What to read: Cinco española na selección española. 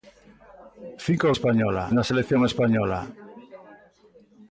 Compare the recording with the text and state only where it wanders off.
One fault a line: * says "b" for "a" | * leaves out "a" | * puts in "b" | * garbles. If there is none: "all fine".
all fine